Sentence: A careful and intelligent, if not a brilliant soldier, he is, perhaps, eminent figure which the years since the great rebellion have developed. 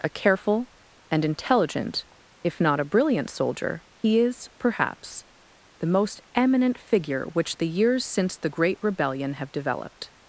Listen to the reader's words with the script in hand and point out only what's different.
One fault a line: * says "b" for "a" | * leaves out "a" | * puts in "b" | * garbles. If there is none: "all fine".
* puts in "the most"